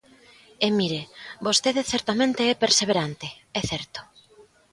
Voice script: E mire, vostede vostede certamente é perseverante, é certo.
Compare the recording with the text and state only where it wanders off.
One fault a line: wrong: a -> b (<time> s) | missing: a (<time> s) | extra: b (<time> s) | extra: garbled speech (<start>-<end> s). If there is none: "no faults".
missing: vostede (1.8 s)